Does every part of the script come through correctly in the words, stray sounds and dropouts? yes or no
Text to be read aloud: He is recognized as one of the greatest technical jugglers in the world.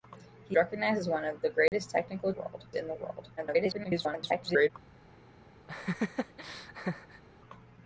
no